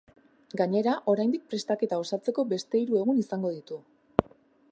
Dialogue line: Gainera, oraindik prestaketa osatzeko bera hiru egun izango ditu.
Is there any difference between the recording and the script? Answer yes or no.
yes